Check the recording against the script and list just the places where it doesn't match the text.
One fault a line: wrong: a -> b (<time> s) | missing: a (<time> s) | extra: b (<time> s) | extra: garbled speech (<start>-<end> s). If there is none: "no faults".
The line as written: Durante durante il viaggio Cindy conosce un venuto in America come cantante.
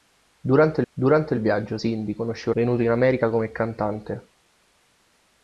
no faults